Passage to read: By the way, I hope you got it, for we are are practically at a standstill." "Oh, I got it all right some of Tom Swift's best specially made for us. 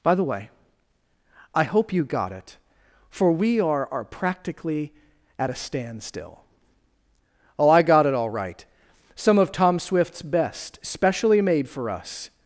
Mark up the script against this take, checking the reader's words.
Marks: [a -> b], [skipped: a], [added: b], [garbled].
By the way, I hope you got it, for we are are practically at a standstill." "Oh, I got it all right some of Tom Swift's best specially made for us.